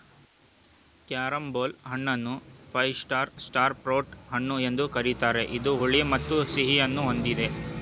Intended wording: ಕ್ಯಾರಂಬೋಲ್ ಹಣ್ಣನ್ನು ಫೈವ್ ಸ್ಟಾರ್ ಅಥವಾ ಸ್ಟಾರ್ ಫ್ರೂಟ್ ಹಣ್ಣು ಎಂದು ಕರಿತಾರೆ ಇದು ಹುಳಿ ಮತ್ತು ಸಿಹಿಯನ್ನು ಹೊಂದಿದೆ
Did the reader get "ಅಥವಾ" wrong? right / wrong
wrong